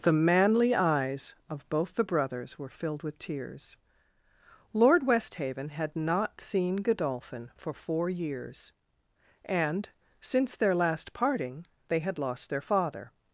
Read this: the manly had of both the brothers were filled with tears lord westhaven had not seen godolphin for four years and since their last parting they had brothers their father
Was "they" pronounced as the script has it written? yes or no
yes